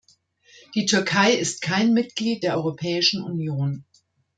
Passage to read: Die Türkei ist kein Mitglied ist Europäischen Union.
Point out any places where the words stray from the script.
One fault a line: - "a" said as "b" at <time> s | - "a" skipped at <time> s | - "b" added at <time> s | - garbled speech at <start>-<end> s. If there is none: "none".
- "ist" said as "der" at 2.4 s